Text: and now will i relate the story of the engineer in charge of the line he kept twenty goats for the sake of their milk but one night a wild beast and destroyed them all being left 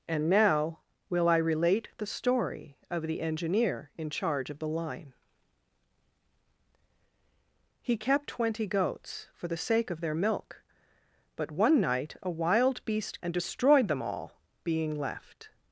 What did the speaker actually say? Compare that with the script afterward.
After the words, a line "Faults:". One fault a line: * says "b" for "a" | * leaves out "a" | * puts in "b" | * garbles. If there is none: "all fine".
and now will i relate the story of the engineer in charge of the line he kept twenty goats for the sake of their milk but one night a wild beast and destroyed them all being left
Faults:
all fine